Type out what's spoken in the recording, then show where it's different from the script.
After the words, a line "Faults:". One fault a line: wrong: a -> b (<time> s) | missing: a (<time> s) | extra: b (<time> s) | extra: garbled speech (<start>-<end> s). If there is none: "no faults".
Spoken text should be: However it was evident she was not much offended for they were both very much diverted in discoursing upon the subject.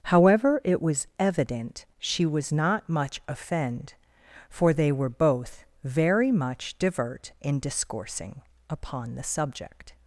However it was evident she was not much offend for they were both very much divert in discoursing upon the subject.
Faults:
wrong: offended -> offend (3.3 s)
wrong: diverted -> divert (6.8 s)